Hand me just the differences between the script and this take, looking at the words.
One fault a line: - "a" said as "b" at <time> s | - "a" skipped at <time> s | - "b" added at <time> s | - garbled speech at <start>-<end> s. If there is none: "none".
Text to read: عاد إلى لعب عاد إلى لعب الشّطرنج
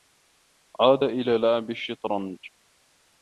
- "عاد إلى لعب" skipped at 1.7 s